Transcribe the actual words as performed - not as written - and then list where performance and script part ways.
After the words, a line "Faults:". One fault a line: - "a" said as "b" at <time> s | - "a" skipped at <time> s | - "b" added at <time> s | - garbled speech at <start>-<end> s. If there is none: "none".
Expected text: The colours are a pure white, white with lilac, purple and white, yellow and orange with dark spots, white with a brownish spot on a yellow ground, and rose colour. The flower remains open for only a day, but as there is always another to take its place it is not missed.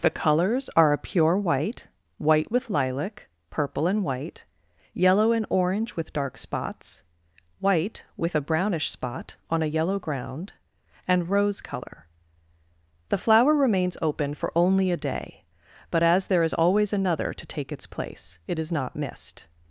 The colours are a pure white, white with lilac, purple and white, yellow and orange with dark spots, white with a brownish spot on a yellow ground, and rose colour. The flower remains open for only a day, but as there is always another to take its place it is not missed.
Faults:
none